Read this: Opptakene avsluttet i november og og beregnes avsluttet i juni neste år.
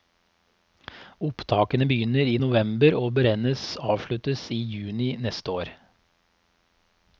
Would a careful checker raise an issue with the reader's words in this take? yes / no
yes